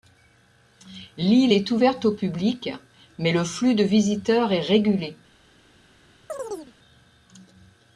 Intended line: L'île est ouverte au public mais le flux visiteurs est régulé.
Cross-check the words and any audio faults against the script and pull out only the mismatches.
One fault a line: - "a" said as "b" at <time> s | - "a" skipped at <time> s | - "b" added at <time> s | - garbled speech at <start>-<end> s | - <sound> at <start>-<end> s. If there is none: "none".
- "de" added at 3.7 s
- chirp at 6.3-6.7 s